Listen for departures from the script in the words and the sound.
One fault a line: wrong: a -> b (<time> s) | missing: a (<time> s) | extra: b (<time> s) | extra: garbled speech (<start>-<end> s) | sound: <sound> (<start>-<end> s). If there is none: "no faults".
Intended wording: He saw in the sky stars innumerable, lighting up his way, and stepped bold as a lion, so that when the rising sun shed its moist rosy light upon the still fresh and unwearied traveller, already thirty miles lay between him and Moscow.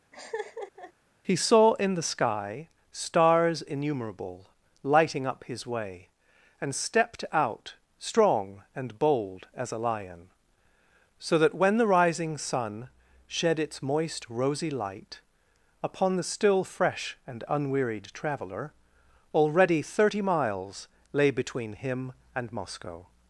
sound: laugh (0.1-0.9 s)
extra: out strong and (7.3 s)